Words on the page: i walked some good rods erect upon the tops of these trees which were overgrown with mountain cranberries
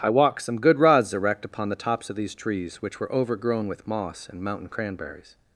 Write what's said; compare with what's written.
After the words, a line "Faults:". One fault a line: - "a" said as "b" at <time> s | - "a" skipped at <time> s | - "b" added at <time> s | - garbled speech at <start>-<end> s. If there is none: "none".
i walked some good rods erect upon the tops of these trees which were overgrown with moss and mountain cranberries
Faults:
- "moss and" added at 3.9 s